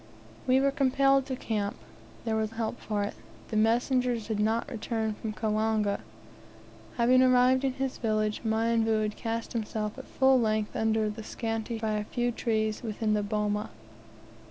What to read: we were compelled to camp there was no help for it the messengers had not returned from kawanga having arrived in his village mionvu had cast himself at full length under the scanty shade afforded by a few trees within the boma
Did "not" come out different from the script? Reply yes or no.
no